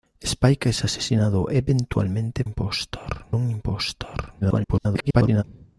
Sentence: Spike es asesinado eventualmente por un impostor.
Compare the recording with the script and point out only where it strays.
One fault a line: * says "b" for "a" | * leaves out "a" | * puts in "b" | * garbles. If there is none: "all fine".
* says "impostor" for "por"
* garbles